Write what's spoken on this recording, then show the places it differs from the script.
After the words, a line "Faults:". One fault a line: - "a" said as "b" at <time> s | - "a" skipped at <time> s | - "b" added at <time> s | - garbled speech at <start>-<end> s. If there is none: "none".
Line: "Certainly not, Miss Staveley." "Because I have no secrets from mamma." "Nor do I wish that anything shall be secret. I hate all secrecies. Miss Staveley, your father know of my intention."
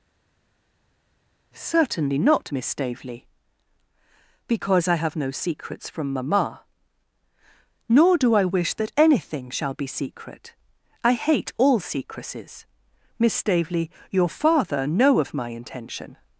"Certainly not, Miss Staveley." "Because I have no secrets from mamma." "Nor do I wish that anything shall be secret. I hate all secrecies. Miss Staveley, your father know of my intention."
Faults:
none